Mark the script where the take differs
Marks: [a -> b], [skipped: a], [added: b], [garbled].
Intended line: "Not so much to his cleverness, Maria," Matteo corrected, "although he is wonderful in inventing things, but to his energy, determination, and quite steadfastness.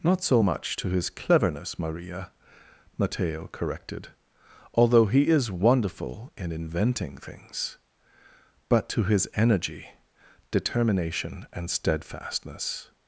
"Not so much to his cleverness, Maria," Matteo corrected, "although he is wonderful in inventing things, but to his energy, determination, and [skipped: quite] steadfastness.